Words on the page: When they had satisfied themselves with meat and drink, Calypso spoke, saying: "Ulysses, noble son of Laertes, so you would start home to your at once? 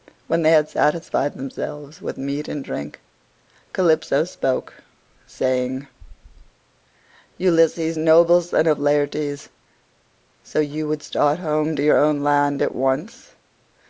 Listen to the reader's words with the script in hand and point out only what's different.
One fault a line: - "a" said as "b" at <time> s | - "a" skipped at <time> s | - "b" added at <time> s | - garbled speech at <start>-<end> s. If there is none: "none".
- "own land" added at 12.0 s